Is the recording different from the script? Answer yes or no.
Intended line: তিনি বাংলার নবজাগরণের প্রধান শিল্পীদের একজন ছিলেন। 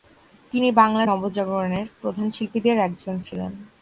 no